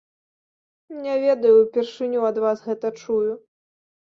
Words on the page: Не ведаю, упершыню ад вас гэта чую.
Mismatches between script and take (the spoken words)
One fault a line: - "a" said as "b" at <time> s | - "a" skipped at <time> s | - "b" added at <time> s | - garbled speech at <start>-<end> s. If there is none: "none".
none